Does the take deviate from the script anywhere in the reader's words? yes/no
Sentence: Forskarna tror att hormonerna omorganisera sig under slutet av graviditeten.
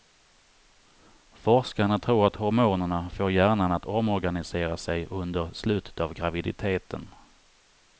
yes